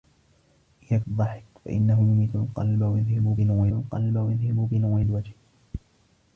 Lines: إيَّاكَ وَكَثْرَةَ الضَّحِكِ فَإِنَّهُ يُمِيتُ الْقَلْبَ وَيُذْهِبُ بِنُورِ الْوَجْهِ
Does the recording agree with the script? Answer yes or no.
no